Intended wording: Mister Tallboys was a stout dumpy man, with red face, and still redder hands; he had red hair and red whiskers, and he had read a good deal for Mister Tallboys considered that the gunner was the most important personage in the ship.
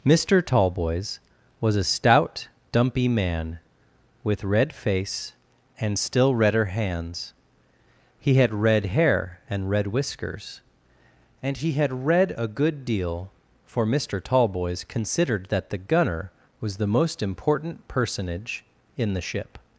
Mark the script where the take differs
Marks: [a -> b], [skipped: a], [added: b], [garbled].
Mister Tallboys was a stout dumpy man, with red face, and still redder hands; he had red hair and red whiskers, and he had read a good deal for Mister Tallboys considered that the gunner was the most important personage in the ship.